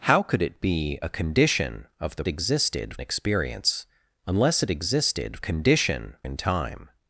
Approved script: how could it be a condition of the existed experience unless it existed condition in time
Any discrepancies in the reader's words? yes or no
no